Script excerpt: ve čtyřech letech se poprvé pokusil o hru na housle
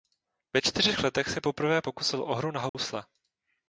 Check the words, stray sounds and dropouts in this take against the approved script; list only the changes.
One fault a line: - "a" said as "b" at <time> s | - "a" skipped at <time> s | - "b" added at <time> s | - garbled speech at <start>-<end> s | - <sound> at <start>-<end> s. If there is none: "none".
- dropout at 2.7-2.7 s